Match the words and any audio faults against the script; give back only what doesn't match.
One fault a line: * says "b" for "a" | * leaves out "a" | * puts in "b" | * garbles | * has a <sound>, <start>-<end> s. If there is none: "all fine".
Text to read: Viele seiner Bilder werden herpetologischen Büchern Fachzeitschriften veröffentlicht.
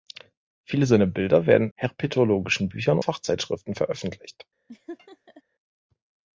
* has a laugh, 4.7-5.4 s